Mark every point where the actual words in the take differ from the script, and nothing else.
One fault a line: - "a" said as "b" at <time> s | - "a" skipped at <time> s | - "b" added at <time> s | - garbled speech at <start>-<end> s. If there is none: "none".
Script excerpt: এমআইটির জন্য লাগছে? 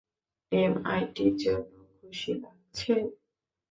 - "খুশি" added at 1.9 s